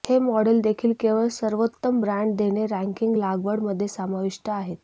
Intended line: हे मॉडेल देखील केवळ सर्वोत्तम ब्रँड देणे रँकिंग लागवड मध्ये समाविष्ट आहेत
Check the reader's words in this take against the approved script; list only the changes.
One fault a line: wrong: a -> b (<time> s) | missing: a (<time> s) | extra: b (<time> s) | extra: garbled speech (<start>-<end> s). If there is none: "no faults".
no faults